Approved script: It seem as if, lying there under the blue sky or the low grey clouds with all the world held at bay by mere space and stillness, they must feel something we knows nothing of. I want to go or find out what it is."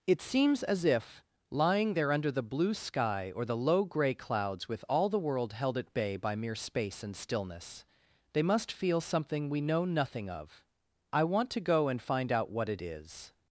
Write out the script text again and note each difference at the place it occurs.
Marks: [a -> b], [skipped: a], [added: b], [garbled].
It [seem -> seems] as if, lying there under the blue sky or the low grey clouds with all the world held at bay by mere space and stillness, they must feel something we [knows -> know] nothing of. I want to go [or -> and] find out what it is."